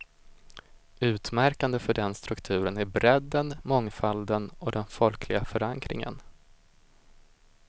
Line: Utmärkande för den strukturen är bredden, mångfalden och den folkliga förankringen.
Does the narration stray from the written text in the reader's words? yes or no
no